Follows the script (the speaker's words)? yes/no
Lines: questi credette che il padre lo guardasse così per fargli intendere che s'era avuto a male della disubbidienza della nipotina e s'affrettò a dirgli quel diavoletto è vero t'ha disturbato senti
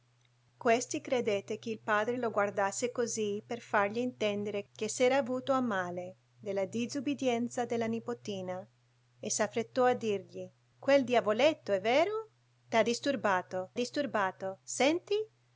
no